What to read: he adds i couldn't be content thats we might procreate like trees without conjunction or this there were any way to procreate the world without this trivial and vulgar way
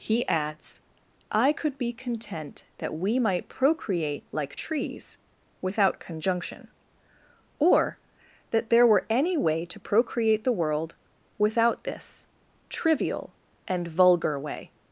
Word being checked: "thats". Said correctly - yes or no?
no